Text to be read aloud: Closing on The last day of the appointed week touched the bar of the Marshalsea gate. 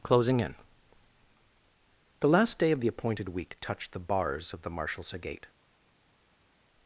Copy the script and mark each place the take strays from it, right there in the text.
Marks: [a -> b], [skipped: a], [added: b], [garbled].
Closing [on -> in] The last day of the appointed week touched the [bar -> bars] of the Marshalsea gate.